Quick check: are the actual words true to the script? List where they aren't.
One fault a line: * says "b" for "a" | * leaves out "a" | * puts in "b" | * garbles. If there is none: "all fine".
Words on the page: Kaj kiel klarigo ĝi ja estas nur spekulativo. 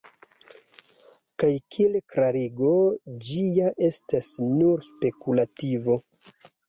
all fine